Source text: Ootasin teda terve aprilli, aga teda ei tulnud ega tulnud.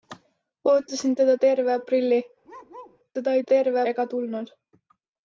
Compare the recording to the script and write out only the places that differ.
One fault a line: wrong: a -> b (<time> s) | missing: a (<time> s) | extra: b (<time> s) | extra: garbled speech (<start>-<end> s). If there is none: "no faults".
missing: aga (2.2 s)
wrong: tulnud -> terve (3.5 s)